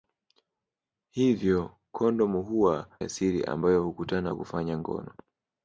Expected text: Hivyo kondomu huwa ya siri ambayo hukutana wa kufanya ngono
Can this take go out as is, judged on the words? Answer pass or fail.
pass